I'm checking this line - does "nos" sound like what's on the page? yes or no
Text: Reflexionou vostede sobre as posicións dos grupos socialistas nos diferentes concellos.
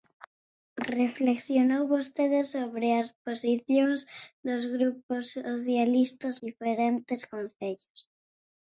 no